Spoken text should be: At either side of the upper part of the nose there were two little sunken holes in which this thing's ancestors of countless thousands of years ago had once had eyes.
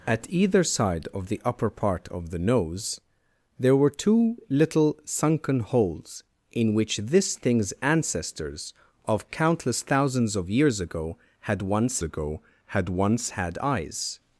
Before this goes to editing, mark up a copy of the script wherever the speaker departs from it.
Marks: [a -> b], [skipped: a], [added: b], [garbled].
At either side of the upper part of the nose there were two little sunken holes in which this thing's ancestors of countless thousands of years ago had once [added: ago had once] had eyes.